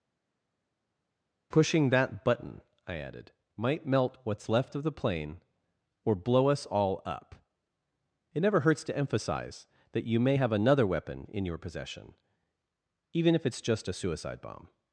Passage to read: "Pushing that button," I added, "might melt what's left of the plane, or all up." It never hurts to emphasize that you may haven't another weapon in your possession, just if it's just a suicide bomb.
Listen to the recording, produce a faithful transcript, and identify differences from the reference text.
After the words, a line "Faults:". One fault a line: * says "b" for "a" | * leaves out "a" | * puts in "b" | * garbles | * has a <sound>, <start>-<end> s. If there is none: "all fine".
"Pushing that button," I added, "might melt what's left of the plane, or blow us all up." It never hurts to emphasize that you may have another weapon in your possession, even if it's just a suicide bomb.
Faults:
* puts in "blow us"
* says "have" for "haven't"
* says "even" for "just"